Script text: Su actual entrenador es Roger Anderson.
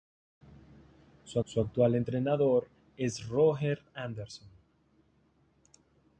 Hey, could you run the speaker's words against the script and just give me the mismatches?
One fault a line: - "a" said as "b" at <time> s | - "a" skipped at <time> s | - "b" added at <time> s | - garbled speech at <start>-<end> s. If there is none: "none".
- "su" added at 1.5 s